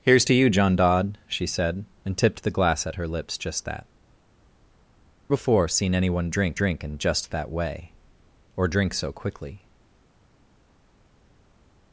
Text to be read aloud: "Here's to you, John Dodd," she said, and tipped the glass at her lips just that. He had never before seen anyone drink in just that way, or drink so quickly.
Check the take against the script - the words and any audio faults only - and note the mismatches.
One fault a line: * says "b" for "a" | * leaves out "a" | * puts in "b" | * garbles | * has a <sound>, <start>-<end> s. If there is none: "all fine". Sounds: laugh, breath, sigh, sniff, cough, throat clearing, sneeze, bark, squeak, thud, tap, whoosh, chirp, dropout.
* leaves out "He had never"
* puts in "drink"